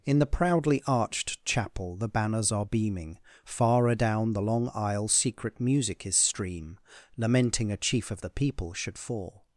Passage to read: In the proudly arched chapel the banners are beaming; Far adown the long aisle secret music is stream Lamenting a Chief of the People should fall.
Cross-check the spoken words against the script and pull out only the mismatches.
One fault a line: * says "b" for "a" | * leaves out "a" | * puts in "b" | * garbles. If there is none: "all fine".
all fine